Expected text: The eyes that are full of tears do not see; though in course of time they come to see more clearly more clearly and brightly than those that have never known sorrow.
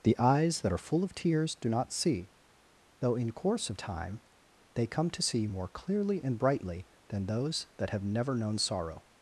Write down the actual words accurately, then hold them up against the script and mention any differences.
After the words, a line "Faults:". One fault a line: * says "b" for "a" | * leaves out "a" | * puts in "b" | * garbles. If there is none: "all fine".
The eyes that are full of tears do not see; though in course of time they come to see more clearly and brightly than those that have never known sorrow.
Faults:
* leaves out "more clearly"